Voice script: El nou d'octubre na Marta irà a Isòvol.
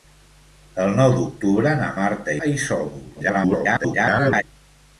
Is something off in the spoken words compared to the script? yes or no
yes